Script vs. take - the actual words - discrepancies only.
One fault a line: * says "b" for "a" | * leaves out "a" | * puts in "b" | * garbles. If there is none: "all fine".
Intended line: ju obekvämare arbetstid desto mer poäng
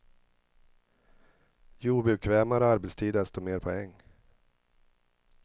all fine